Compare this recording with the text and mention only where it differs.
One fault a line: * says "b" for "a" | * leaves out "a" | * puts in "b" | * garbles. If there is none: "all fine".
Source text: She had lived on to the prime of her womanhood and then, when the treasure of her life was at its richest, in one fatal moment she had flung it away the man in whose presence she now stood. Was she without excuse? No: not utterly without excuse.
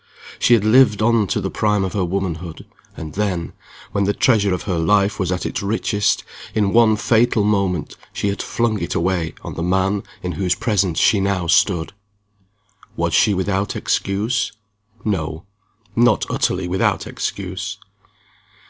* puts in "on"